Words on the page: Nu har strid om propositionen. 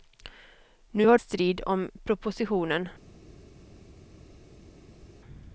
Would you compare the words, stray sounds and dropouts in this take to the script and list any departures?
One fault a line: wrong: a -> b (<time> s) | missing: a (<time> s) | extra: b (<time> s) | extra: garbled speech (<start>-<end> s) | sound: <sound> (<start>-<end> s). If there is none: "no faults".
no faults